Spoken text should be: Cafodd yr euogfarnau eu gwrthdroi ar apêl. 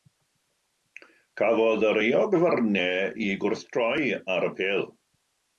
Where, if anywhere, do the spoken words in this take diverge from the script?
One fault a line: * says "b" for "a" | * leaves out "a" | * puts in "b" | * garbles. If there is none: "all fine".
all fine